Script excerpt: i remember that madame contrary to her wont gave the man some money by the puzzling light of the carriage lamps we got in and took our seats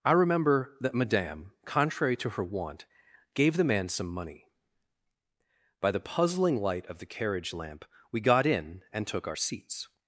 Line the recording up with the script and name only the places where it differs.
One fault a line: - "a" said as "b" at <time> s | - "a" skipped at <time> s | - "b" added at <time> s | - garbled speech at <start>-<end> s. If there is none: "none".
- "lamps" said as "lamp" at 7.5 s